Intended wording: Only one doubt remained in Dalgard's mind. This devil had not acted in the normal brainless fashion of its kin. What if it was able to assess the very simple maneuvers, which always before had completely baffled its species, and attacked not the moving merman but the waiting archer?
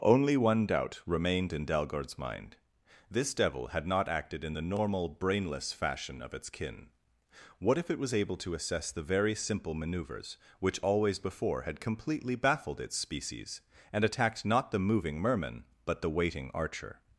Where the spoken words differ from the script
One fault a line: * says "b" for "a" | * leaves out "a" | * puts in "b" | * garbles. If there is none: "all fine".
all fine